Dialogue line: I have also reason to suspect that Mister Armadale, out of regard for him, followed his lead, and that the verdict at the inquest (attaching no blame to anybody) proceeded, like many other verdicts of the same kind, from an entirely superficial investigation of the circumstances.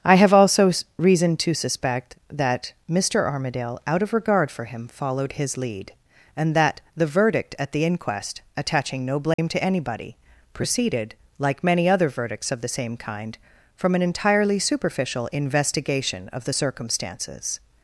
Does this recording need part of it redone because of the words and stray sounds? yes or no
yes